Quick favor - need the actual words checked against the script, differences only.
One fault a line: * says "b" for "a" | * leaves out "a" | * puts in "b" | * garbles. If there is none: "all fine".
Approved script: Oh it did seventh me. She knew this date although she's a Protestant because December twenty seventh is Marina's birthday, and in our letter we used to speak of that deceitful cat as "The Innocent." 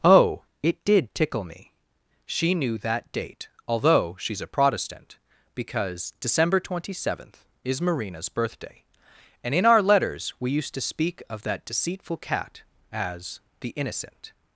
* says "tickle" for "seventh"
* says "that" for "this"
* says "letters" for "letter"